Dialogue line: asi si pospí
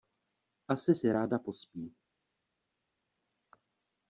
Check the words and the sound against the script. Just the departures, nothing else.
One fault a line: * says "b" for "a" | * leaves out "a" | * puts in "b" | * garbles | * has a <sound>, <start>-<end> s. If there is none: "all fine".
* puts in "ráda"